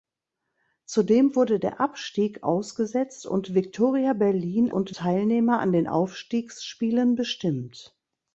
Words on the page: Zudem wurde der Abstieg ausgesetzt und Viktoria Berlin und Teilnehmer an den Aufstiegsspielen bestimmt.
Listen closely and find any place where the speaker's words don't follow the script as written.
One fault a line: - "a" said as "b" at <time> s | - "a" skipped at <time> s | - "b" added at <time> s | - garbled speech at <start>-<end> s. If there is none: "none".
none